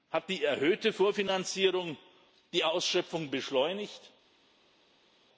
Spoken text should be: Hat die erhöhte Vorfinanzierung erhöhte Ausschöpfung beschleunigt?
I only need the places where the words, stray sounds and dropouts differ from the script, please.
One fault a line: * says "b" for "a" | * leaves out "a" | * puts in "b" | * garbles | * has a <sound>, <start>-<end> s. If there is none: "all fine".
* says "die" for "erhöhte"